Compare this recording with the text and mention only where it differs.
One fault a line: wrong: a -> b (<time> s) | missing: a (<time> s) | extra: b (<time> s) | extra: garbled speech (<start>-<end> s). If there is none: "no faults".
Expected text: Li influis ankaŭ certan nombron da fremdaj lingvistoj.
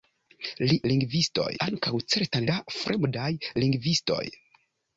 wrong: influis -> lingvistoj (0.9 s)
missing: nombron (2.5 s)